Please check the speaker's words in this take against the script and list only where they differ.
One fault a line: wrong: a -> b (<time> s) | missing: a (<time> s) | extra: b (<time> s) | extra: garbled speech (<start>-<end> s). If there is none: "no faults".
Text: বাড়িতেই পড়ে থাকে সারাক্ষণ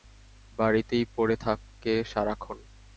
no faults